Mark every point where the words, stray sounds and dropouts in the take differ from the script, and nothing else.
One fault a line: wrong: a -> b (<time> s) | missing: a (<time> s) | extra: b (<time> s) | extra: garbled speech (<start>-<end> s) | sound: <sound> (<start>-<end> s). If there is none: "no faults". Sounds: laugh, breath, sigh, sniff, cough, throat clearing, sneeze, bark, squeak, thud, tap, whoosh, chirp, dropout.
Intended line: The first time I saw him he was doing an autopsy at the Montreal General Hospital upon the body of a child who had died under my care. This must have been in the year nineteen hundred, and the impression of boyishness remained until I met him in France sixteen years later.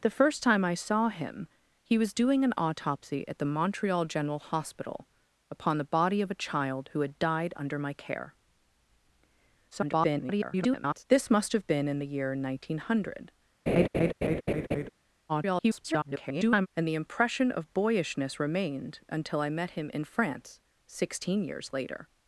extra: garbled speech (9.7-11.0 s)
sound: laugh (13.7-14.9 s)
extra: garbled speech (15.3-16.7 s)